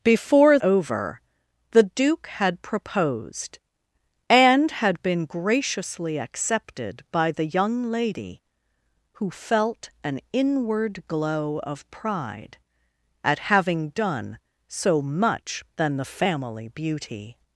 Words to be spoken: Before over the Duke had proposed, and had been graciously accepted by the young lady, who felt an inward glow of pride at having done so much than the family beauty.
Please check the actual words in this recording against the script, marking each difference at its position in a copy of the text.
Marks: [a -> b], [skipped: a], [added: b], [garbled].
Before over the Duke had proposed, and had been graciously accepted by the young lady, who felt an inward glow of pride at having done so much than the family beauty.